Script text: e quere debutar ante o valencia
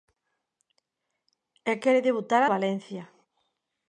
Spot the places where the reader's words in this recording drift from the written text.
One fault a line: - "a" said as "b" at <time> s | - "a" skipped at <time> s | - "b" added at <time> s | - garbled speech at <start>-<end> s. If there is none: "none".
- "ante" skipped at 2.4 s